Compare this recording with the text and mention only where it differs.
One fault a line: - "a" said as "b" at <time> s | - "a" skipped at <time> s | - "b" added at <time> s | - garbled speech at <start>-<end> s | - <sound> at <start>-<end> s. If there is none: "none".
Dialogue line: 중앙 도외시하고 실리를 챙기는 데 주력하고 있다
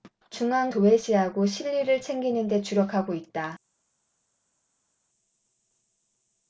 none